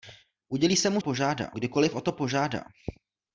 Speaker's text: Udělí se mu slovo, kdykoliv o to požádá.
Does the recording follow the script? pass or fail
fail